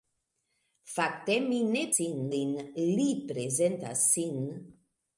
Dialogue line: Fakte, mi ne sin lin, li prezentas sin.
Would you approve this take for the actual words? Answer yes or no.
yes